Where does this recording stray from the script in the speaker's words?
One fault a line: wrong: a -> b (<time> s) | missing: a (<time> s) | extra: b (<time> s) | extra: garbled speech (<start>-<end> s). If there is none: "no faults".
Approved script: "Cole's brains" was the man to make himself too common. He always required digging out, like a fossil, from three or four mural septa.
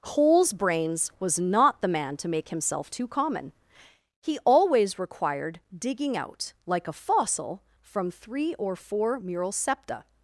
extra: not (1.4 s)